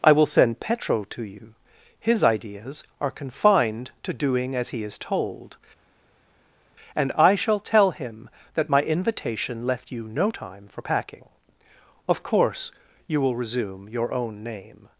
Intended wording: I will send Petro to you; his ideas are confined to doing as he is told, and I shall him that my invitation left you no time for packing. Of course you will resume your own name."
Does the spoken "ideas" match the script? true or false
true